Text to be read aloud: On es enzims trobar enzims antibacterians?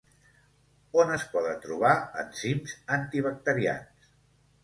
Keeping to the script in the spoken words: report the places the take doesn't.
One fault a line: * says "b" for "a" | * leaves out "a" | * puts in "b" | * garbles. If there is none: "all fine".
* says "poden" for "enzims"